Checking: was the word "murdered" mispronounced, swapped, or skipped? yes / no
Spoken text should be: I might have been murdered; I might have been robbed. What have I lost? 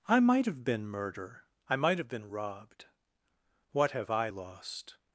yes